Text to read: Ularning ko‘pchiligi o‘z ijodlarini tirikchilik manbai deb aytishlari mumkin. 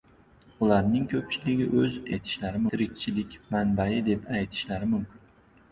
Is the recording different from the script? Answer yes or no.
yes